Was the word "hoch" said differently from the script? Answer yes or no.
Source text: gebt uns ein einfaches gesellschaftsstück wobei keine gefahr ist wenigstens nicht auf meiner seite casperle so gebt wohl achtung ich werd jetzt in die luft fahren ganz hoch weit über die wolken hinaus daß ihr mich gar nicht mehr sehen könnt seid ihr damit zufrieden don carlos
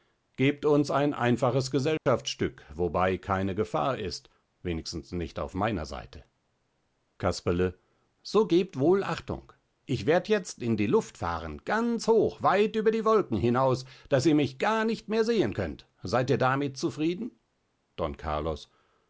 no